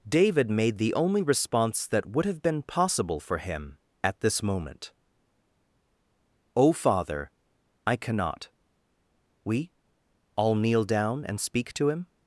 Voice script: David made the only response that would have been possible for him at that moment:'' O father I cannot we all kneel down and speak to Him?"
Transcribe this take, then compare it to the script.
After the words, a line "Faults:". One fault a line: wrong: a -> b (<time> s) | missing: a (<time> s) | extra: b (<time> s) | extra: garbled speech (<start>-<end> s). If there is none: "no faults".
David made the only response that would have been possible for him at this moment:'' O father I cannot we all kneel down and speak to Him?"
Faults:
wrong: that -> this (4.2 s)